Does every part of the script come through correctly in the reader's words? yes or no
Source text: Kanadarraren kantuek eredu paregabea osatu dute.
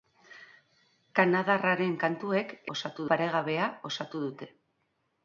no